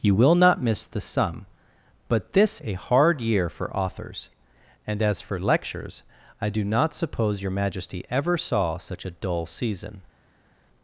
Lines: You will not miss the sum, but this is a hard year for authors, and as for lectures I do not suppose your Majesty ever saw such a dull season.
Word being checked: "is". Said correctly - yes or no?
no